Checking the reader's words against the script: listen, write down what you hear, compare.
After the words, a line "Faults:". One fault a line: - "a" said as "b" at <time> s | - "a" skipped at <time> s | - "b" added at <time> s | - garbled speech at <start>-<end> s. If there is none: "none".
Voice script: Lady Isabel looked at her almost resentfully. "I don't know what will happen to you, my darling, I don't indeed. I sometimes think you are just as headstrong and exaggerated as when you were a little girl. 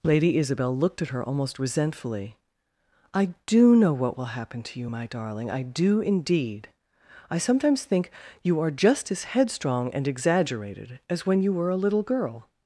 Lady Isabel looked at her almost resentfully. "I do know what will happen to you, my darling, I do indeed. I sometimes think you are just as headstrong and exaggerated as when you were a little girl.
Faults:
- "don't" said as "do" at 3.5 s
- "don't" said as "do" at 5.6 s